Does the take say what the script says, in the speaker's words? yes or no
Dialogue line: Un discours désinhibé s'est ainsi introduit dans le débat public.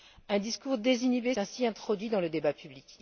no